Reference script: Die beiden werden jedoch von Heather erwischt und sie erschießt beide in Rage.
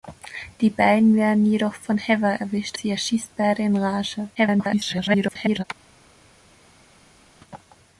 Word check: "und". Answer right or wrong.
wrong